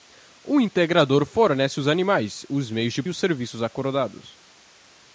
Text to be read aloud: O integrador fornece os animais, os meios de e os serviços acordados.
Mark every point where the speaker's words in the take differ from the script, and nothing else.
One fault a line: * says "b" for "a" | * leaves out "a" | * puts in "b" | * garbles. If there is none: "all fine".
all fine